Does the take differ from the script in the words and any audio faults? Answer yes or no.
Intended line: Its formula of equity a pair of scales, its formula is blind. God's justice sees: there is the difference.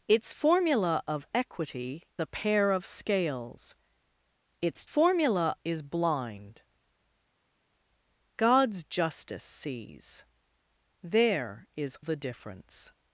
no